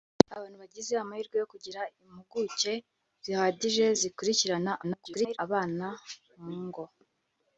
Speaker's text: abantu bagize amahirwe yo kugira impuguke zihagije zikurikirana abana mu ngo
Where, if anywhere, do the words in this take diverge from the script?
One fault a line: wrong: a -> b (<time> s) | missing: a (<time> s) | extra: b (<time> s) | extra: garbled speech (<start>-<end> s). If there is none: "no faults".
extra: garbled speech (4.8-5.4 s)